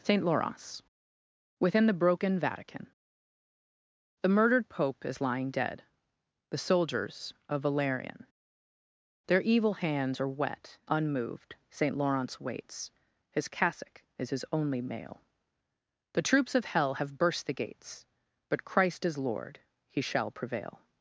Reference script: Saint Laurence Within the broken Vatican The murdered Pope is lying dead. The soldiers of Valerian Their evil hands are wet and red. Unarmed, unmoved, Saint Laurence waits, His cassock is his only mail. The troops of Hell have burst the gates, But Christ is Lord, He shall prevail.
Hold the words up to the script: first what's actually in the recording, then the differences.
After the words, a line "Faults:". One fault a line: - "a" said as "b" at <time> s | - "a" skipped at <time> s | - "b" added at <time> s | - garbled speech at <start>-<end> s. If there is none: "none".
Saint Laurence Within the broken Vatican The murdered Pope is lying dead. The soldiers of Valerian Their evil hands are wet unmoved, Saint Laurence waits, His cassock is his only mail. The troops of Hell have burst the gates, But Christ is Lord, He shall prevail.
Faults:
- "and red Unarmed" skipped at 10.8 s